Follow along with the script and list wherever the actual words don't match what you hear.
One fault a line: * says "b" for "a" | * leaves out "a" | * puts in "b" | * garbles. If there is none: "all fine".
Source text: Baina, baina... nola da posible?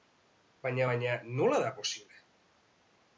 all fine